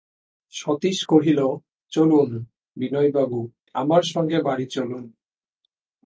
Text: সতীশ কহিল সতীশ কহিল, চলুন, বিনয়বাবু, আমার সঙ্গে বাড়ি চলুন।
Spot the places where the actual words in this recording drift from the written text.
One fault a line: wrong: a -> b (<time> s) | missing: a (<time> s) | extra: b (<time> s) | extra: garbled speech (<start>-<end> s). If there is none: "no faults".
missing: সতীশ কহিল (1.4 s)